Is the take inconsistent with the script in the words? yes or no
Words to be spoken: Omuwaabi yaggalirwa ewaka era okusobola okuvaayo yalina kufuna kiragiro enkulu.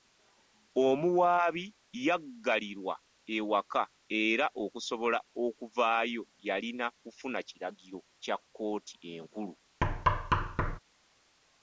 yes